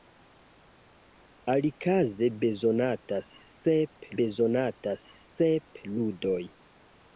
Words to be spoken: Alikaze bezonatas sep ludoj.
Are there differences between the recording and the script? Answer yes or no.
yes